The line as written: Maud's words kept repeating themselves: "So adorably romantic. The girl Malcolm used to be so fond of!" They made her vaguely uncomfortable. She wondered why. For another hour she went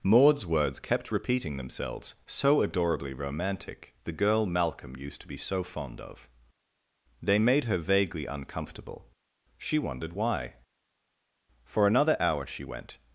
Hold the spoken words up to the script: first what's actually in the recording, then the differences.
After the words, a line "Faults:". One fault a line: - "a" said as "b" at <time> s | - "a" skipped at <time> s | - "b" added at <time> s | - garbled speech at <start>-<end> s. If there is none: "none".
Maud's words kept repeating themselves: "So adorably romantic. The girl Malcolm used to be so fond of!" They made her vaguely uncomfortable. She wondered why. For another hour she went
Faults:
none